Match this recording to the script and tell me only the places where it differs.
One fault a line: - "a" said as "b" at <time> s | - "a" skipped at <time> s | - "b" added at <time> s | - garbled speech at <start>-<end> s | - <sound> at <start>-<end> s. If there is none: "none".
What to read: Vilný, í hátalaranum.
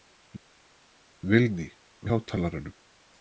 none